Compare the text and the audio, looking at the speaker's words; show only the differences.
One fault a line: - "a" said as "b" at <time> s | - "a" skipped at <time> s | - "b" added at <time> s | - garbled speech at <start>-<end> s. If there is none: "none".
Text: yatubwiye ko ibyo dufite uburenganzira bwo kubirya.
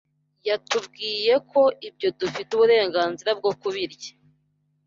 none